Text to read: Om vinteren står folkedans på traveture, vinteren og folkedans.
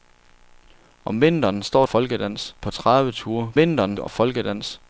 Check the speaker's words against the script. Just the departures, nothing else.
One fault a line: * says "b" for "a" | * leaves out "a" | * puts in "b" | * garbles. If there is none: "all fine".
all fine